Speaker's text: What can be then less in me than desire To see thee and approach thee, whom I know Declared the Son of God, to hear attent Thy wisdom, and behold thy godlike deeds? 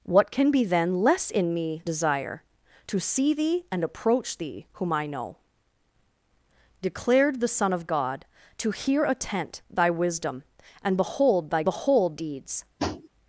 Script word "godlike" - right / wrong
wrong